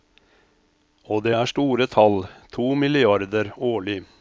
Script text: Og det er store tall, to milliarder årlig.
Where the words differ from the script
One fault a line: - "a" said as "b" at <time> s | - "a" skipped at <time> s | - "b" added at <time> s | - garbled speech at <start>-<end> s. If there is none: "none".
none